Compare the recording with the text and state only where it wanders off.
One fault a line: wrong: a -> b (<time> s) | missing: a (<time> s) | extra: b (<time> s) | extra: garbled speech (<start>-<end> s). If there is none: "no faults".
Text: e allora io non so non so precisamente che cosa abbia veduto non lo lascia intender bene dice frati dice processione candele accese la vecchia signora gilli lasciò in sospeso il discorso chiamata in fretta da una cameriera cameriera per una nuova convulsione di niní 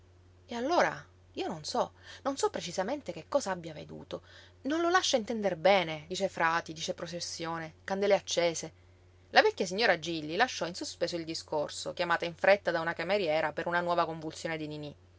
missing: cameriera (13.5 s)